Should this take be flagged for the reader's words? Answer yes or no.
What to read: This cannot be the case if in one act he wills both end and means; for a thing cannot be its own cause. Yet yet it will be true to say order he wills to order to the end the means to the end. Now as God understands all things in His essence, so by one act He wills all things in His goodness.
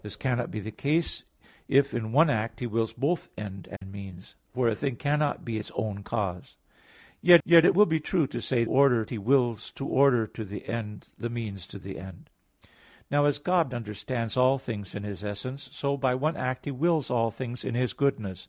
no